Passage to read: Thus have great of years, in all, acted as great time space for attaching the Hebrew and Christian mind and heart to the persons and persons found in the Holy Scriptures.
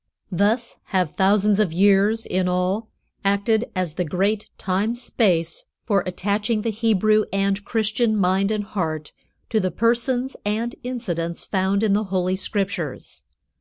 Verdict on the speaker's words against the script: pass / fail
fail